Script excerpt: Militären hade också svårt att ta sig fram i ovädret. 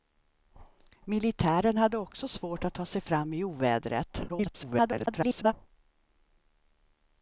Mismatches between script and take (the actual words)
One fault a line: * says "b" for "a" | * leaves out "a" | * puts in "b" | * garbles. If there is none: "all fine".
* garbles